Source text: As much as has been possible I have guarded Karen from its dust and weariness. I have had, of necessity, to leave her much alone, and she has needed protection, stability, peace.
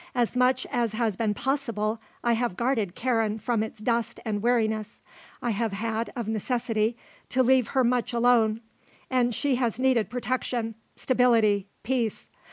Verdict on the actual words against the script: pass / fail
pass